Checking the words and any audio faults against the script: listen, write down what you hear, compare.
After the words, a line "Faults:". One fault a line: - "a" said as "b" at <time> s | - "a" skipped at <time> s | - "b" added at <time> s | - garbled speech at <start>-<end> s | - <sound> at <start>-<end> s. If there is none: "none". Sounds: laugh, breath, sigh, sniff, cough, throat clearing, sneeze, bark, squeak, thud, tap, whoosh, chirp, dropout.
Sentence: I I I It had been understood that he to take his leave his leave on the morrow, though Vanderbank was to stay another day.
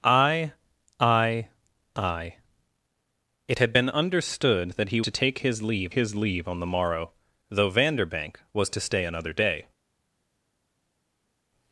I I I It had been understood that he to take his leave his leave on the morrow, though Vanderbank was to stay another day.
Faults:
none